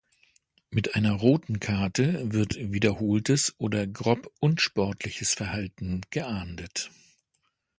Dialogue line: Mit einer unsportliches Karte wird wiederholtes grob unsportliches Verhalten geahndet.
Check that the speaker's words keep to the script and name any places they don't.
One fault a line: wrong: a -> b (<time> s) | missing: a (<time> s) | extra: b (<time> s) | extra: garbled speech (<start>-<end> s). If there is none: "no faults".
wrong: unsportliches -> roten (1.1 s)
extra: oder (3.6 s)